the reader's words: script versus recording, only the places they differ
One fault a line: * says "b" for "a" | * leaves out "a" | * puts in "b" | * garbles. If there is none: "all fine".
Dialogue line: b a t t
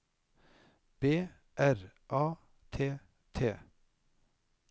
* puts in "r"